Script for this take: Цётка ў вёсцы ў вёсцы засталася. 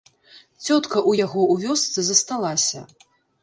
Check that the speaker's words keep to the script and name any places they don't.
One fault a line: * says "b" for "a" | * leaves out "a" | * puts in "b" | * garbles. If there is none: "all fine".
* says "яго" for "вёсцы"